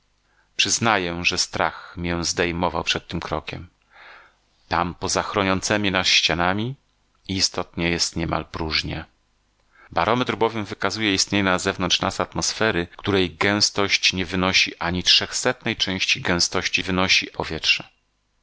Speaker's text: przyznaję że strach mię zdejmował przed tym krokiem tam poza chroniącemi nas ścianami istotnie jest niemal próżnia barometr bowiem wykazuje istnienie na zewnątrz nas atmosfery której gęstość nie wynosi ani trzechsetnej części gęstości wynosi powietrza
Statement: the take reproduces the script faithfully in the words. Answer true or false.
true